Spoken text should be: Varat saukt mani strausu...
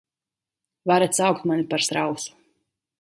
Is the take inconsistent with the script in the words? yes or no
yes